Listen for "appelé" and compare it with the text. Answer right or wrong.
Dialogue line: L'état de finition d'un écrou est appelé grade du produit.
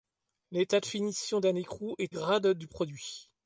wrong